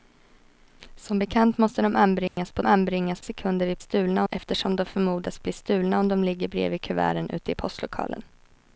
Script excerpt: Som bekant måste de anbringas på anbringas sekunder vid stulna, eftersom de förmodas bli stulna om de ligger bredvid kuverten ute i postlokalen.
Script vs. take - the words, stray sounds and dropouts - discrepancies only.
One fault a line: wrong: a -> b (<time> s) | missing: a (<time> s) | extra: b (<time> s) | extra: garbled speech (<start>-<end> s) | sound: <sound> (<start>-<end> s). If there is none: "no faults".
sound: dropout (2.3-2.4 s)